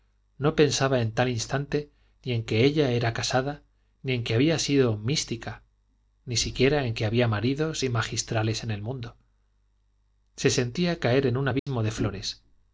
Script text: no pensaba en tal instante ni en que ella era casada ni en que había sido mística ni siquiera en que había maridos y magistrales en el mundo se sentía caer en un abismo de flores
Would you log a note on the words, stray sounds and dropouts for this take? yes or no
yes